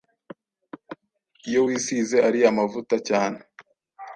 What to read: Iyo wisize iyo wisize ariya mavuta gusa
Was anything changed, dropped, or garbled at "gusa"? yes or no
yes